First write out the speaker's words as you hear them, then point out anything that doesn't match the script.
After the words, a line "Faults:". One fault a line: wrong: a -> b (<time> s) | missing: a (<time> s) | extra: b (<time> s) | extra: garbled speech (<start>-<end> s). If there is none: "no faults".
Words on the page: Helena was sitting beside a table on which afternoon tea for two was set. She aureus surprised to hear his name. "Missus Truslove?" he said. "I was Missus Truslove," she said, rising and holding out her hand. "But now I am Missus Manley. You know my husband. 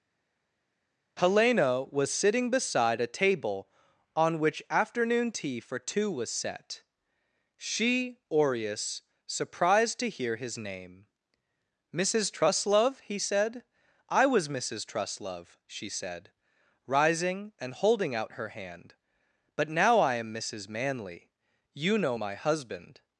Helena was sitting beside a table on which afternoon tea for two was set. She aureus surprised to hear his name. "Missus Truslove?" he said. "I was Missus Truslove," she said, rising and holding out her hand. "But now I am Missus Manley. You know my husband.
Faults:
no faults